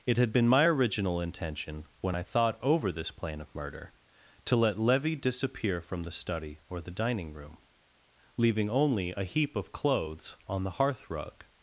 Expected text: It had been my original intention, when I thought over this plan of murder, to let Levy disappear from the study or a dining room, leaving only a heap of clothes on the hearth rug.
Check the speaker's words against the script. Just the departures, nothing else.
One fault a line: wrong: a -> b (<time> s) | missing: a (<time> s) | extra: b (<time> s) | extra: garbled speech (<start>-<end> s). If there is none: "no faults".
wrong: a -> the (6.8 s)